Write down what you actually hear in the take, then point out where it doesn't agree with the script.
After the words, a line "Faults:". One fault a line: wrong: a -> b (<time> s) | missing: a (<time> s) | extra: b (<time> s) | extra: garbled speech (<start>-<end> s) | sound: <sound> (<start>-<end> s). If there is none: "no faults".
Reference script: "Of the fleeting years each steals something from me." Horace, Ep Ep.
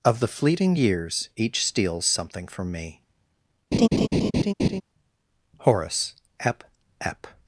"Of the fleeting years each steals something from me." Horace, Ep Ep.
Faults:
sound: laugh (3.7-4.8 s)